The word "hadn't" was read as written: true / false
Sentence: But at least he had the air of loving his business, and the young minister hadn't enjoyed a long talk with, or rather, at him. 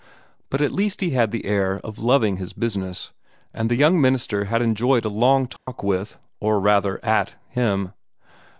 false